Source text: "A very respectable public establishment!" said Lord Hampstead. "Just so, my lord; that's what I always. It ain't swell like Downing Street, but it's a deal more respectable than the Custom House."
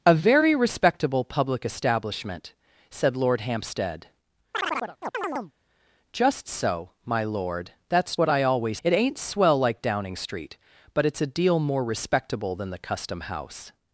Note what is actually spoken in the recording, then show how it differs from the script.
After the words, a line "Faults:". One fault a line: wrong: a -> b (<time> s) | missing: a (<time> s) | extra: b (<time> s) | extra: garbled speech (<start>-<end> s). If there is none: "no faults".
"A very respectable public establishment!" said Lord Hampstead. "Just so, my lord; that's what I always. It ain't swell like Downing Street, but it's a deal more respectable than the Custom House."
Faults:
no faults